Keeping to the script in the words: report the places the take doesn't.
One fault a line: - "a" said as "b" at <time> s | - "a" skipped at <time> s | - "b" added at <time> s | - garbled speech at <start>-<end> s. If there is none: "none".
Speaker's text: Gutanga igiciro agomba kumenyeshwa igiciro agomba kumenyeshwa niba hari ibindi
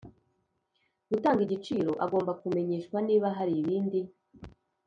- "igiciro agomba kumenyeshwa" skipped at 3.0 s